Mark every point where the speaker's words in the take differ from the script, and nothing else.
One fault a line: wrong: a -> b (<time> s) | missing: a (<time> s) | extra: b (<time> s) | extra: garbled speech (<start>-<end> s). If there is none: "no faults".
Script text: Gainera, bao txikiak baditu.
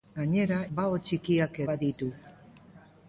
no faults